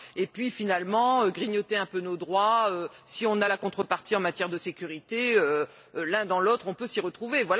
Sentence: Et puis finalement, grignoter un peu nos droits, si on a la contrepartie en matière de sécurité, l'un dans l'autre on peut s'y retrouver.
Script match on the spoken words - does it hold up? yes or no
yes